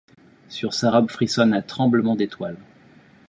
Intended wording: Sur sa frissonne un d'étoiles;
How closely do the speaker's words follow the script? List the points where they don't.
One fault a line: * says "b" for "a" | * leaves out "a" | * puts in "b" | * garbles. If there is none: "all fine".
* puts in "robe"
* puts in "tremblement"